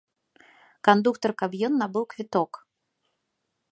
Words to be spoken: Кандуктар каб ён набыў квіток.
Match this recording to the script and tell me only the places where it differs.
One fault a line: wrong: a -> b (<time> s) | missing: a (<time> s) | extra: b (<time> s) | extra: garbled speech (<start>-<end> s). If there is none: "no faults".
no faults